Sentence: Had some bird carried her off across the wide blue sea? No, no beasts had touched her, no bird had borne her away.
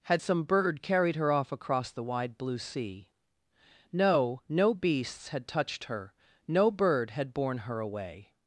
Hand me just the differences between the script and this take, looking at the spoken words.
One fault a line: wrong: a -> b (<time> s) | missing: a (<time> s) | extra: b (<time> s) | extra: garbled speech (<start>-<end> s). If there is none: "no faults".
no faults